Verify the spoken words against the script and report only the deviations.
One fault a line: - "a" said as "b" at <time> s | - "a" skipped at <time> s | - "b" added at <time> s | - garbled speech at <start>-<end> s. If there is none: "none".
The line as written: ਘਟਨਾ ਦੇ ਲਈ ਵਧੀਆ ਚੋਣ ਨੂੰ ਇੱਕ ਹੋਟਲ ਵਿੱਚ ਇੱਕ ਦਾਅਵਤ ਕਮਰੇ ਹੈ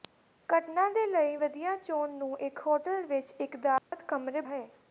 none